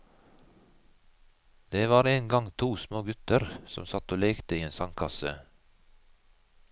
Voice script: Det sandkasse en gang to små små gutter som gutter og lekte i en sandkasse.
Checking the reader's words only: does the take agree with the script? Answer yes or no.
no